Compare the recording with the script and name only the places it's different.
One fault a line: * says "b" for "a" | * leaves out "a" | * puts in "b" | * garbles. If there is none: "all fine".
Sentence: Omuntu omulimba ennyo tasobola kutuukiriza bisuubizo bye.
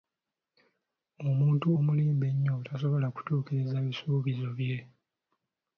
all fine